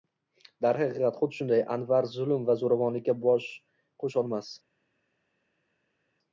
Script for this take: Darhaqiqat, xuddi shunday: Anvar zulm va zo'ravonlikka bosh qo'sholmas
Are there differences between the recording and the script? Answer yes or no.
no